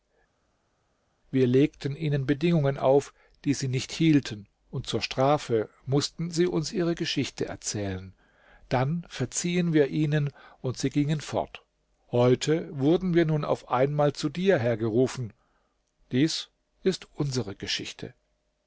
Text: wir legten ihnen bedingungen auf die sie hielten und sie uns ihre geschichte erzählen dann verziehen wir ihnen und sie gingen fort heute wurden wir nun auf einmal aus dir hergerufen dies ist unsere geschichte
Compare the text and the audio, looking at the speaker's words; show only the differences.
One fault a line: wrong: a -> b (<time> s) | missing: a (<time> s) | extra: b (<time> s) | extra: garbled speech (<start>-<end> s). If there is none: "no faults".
extra: nicht (3.7 s)
extra: zur strafe mußten (4.9 s)
wrong: aus -> zu (14.1 s)